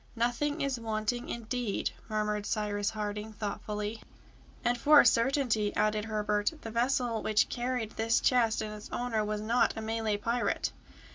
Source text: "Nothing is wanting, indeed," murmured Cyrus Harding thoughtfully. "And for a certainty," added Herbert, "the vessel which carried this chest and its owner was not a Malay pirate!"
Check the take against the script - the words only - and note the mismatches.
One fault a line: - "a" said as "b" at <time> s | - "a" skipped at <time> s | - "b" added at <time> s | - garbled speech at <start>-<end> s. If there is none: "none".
none